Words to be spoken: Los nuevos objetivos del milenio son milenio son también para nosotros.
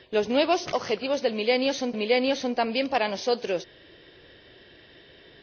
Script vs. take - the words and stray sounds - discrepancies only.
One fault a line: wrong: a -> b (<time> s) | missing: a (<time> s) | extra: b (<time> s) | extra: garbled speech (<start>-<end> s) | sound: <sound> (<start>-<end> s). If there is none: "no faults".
no faults